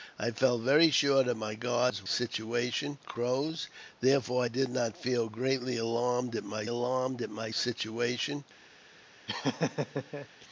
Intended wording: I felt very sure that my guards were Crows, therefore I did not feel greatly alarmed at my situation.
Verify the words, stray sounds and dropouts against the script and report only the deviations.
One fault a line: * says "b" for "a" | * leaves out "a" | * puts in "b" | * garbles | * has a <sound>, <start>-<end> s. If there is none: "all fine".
* says "situation" for "were"
* puts in "alarmed at my"
* has a laugh, 9.3-10.3 s